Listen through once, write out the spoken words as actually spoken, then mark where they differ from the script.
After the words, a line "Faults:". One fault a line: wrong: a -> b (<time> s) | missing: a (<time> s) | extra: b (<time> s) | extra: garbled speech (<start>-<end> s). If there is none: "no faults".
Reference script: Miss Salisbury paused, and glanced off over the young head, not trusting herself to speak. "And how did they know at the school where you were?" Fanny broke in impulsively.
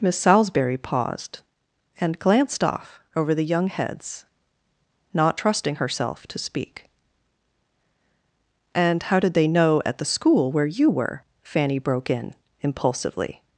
Miss Salisbury paused, and glanced off over the young heads, not trusting herself to speak. "And how did they know at the school where you were?" Fanny broke in impulsively.
Faults:
wrong: head -> heads (3.7 s)